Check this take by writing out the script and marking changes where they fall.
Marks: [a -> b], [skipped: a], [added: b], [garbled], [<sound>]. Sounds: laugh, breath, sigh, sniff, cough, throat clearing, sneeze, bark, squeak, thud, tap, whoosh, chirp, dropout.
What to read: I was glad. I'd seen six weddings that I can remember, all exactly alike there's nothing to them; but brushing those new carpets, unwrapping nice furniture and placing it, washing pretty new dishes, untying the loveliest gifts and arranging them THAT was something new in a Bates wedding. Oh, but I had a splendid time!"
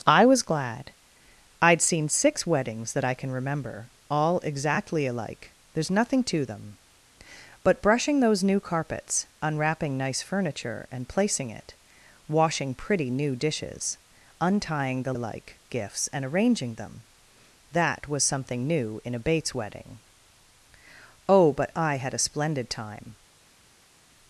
I was glad. I'd seen six weddings that I can remember, all exactly alike there's nothing to them; but brushing those new carpets, unwrapping nice furniture and placing it, washing pretty new dishes, untying the [loveliest -> alike] gifts and arranging them THAT was something new in a Bates wedding. Oh, but I had a splendid time!"